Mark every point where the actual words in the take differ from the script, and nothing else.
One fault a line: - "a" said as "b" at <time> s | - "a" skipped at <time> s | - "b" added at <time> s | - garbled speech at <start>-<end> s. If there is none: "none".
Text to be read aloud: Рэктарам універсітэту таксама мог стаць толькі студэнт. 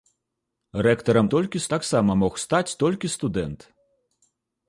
- "універсітэту" said as "толькі" at 1.4 s